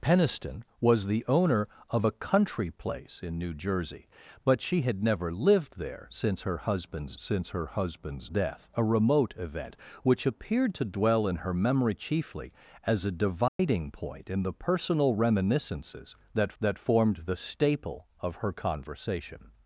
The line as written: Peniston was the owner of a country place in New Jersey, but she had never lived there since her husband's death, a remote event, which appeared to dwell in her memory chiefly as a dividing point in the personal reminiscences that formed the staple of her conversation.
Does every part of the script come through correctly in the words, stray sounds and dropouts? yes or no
no